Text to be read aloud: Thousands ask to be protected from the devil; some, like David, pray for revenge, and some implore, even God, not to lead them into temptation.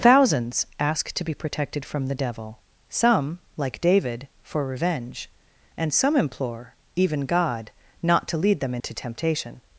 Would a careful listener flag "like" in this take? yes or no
no